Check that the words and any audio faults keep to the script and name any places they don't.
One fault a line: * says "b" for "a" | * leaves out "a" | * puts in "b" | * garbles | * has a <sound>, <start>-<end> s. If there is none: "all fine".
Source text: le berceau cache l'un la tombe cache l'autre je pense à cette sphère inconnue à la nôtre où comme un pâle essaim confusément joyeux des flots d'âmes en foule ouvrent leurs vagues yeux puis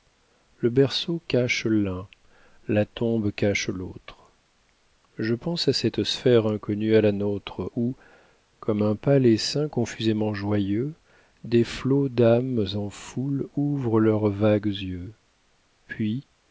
all fine